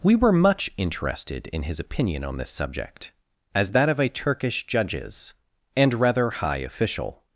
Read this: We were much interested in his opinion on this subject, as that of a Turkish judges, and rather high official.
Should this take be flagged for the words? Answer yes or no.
no